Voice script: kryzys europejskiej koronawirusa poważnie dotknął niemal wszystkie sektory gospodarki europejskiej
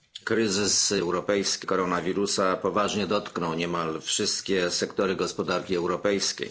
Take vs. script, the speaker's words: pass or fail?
pass